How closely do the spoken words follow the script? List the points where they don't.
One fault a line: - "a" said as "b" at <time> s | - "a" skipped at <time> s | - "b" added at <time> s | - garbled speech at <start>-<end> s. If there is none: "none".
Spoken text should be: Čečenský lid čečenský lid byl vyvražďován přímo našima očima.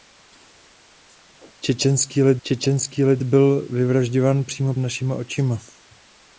none